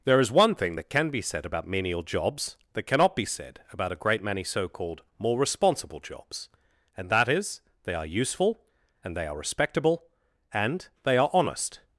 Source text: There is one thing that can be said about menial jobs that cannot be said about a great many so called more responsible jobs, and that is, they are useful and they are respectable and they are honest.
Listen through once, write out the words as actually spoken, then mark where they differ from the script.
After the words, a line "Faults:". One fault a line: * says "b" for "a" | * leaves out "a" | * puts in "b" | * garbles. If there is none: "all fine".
There is one thing that can be said about menial jobs that cannot be said about a great many so called more responsible jobs, and that is, they are useful and they are respectable and they are honest.
Faults:
all fine